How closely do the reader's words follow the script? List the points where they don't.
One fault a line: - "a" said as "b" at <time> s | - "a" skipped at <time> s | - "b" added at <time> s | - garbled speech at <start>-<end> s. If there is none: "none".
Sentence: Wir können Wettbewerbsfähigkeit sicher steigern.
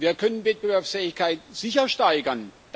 none